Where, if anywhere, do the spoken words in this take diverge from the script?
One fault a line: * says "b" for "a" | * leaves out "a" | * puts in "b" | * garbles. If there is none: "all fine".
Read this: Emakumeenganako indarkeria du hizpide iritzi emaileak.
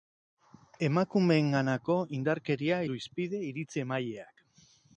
all fine